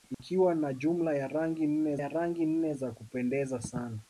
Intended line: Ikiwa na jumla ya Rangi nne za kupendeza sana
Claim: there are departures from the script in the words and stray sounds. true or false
true